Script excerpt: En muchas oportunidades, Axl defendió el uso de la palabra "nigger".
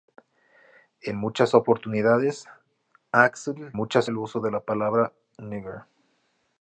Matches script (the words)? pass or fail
fail